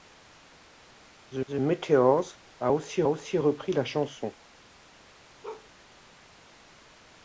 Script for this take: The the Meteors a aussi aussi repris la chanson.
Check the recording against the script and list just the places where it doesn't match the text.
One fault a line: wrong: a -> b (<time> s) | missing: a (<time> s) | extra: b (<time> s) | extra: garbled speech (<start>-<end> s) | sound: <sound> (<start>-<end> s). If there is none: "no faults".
sound: bark (5.4-5.7 s)